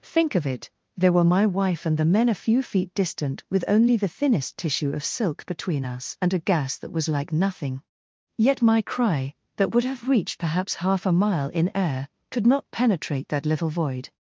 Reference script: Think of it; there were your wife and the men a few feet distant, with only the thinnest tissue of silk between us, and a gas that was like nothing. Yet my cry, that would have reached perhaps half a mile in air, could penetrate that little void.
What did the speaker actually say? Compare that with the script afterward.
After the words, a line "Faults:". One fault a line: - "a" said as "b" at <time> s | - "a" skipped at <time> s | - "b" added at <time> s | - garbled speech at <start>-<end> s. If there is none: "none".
Think of it; there were my wife and the men a few feet distant, with only the thinnest tissue of silk between us, and a gas that was like nothing. Yet my cry, that would have reached perhaps half a mile in air, could not penetrate that little void.
Faults:
- "your" said as "my" at 1.2 s
- "not" added at 12.5 s